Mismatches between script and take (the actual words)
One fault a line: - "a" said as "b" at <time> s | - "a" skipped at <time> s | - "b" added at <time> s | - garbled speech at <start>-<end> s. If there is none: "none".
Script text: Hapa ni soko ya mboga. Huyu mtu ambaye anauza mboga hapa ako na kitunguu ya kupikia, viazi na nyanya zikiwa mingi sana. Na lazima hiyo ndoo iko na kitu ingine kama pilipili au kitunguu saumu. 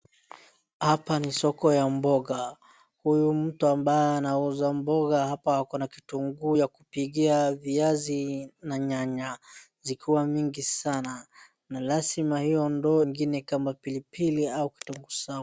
- "iko na kitu" skipped at 13.0 s